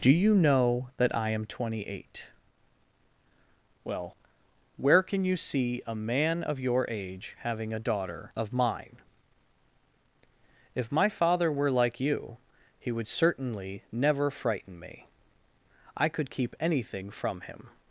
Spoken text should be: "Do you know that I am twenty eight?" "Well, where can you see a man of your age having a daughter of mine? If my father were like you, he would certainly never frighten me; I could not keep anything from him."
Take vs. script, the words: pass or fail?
fail